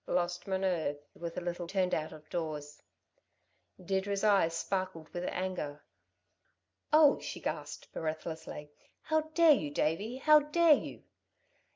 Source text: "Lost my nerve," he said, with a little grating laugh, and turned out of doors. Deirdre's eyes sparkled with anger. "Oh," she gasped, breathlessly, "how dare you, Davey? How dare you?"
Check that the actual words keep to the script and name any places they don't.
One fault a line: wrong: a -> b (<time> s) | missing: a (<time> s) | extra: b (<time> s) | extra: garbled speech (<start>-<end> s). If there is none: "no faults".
missing: he said (1.0 s)
missing: grating laugh and (1.7 s)